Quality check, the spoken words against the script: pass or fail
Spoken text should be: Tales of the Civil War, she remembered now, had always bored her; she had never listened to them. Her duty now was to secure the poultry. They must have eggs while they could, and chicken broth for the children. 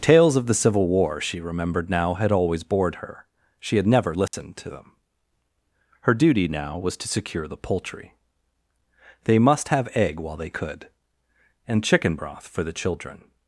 fail